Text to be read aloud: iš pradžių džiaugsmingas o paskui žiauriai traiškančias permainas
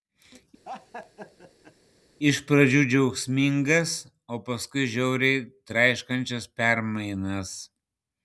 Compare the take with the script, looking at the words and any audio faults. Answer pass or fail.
fail